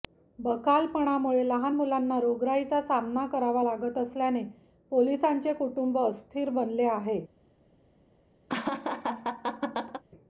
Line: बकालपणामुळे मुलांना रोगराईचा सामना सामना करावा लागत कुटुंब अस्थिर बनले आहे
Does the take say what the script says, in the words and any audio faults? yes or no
no